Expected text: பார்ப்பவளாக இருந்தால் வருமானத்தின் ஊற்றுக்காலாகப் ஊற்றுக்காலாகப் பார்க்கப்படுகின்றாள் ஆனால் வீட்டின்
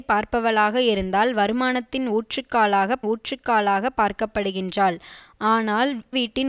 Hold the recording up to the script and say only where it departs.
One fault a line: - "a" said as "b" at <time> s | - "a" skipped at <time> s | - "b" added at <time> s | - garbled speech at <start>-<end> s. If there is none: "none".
none